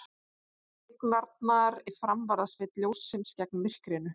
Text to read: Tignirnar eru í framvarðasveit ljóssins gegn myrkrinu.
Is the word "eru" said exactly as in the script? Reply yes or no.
no